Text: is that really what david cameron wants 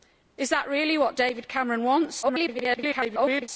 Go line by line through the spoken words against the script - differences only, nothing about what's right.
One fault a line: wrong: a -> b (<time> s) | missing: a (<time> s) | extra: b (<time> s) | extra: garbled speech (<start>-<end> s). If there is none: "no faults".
extra: garbled speech (2.2-3.5 s)